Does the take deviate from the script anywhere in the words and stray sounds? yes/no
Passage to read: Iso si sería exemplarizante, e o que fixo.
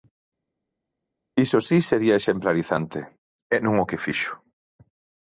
yes